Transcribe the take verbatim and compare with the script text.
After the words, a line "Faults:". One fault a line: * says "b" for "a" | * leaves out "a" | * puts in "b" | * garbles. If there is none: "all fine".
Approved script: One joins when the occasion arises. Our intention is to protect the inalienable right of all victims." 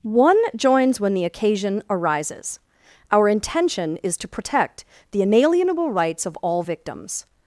One joins when the occasion arises. Our intention is to protect the inalienable rights of all victims."
Faults:
* says "rights" for "right"